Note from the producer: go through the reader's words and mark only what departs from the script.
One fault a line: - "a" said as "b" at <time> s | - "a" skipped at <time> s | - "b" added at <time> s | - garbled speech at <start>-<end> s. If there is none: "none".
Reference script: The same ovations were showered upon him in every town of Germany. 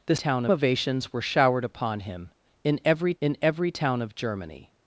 - "same" said as "town" at 0.1 s
- "in every" added at 3.2 s